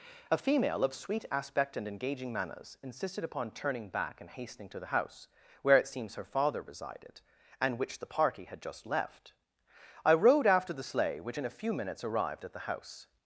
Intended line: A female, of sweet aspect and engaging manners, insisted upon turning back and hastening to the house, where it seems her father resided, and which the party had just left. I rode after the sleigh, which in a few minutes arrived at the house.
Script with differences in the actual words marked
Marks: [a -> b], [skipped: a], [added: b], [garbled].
A female, of sweet aspect and engaging manners, insisted upon turning back and hastening to the house, where it seems her father resided, and which the party had just left. I rode after the sleigh, which in a few minutes arrived at the house.